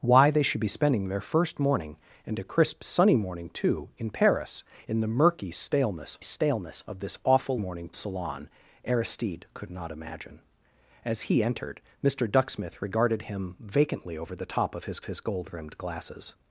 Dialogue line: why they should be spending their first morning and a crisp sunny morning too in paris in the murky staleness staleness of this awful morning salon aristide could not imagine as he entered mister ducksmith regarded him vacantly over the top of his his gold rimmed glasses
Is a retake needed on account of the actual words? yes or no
no